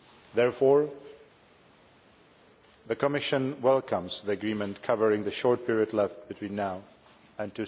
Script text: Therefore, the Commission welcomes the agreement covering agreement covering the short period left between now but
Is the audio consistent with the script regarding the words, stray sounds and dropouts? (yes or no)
no